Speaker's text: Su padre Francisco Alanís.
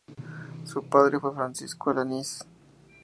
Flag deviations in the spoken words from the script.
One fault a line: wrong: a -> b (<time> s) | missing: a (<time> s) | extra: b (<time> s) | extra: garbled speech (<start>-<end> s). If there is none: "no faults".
extra: fue (1.2 s)